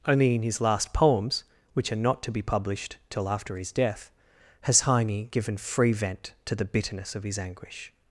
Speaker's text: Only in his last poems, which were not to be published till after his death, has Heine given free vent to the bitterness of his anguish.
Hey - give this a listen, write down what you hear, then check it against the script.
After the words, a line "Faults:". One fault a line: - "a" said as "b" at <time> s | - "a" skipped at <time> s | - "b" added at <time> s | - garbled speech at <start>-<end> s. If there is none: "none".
Only in his last poems, which are not to be published till after his death, has Heine given free vent to the bitterness of his anguish.
Faults:
- "were" said as "are" at 1.9 s